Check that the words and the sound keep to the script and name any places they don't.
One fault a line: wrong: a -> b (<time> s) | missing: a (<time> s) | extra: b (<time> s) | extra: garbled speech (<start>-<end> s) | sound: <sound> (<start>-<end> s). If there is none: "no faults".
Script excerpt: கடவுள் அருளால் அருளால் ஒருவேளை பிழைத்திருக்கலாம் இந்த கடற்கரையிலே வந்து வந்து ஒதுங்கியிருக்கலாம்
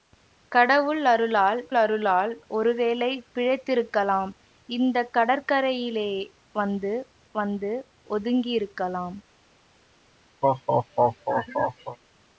sound: laugh (10.4-12.0 s)